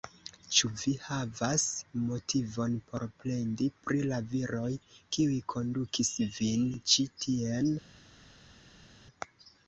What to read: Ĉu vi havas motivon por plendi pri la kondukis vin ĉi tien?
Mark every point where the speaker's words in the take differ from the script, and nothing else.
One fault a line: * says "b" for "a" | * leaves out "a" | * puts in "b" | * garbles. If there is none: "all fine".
* puts in "viroj kiuj"